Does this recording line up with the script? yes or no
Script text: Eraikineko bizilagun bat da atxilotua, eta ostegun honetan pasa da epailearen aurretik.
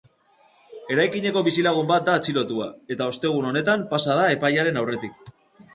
yes